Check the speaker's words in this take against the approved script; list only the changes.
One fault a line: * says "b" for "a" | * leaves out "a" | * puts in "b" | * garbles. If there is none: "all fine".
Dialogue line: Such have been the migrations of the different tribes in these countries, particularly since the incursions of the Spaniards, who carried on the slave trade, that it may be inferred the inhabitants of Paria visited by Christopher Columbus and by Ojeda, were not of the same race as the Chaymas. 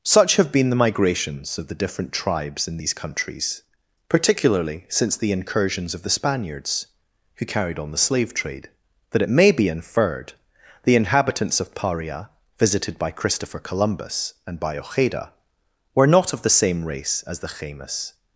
all fine